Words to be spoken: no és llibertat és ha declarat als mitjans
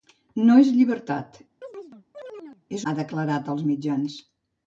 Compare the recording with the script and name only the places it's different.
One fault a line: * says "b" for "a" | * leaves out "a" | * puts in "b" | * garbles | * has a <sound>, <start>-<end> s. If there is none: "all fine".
* has a chirp, 1.6-2.6 s